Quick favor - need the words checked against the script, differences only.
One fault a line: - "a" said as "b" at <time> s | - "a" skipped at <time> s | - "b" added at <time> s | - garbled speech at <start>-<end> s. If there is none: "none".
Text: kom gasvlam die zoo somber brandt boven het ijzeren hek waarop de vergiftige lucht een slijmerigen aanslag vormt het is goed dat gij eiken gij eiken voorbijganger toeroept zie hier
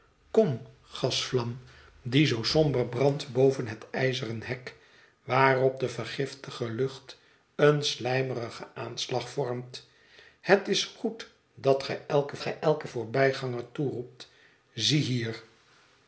none